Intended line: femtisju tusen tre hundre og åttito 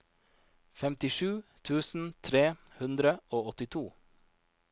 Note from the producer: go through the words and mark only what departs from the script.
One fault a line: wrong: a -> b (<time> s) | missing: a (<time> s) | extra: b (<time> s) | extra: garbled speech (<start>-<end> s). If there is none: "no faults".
no faults